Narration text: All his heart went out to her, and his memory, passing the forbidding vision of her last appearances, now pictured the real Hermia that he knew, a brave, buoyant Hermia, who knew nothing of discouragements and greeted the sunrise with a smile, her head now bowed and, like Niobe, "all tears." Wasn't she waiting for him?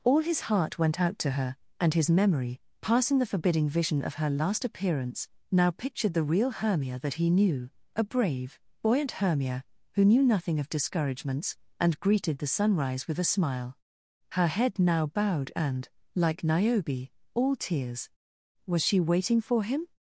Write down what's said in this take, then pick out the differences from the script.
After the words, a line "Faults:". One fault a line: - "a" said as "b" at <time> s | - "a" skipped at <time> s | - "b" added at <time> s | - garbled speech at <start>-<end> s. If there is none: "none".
All his heart went out to her, and his memory, passing the forbidding vision of her last appearance, now pictured the real Hermia that he knew, a brave, buoyant Hermia, who knew nothing of discouragements and greeted the sunrise with a smile, her head now bowed and, like Niobe, "all tears." Was she waiting for him?
Faults:
- "appearances" said as "appearance" at 4.6 s
- "Wasn't" said as "Was" at 18.7 s